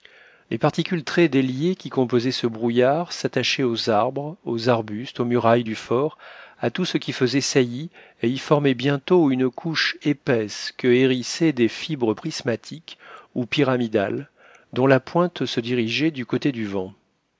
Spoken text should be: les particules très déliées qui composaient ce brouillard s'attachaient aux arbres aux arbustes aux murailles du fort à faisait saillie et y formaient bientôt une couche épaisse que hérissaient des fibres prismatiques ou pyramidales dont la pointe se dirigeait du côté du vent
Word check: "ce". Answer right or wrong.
right